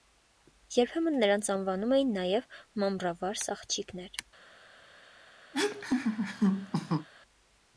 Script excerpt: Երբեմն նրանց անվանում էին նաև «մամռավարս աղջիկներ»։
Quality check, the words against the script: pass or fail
pass